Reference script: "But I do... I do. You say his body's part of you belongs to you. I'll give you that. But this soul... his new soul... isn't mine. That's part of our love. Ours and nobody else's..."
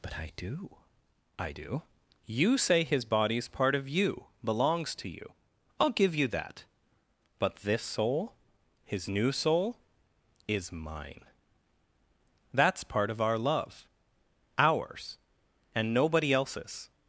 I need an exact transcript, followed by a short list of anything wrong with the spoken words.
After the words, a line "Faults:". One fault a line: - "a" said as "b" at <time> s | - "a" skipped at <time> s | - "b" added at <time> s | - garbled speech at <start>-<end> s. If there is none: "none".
"But I do... I do. You say his body's part of you belongs to you. I'll give you that. But this soul... his new soul... is mine. That's part of our love. Ours and nobody else's..."
Faults:
- "isn't" said as "is" at 10.5 s